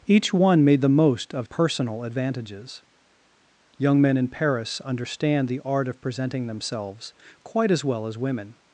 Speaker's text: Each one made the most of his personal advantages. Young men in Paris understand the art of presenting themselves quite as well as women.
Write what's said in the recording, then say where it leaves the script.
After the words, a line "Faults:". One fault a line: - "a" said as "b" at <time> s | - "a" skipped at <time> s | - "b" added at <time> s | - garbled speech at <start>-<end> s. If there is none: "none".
Each one made the most of personal advantages. Young men in Paris understand the art of presenting themselves quite as well as women.
Faults:
- "his" skipped at 1.5 s